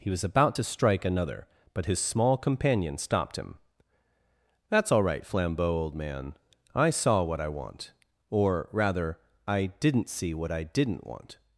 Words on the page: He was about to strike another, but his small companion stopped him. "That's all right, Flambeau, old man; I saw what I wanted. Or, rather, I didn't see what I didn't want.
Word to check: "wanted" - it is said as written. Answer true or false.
false